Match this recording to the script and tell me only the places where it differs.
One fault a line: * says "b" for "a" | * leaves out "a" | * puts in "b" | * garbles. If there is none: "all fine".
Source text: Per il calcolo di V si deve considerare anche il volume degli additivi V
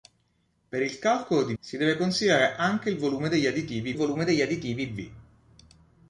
* leaves out "V"
* puts in "volume degli additivi"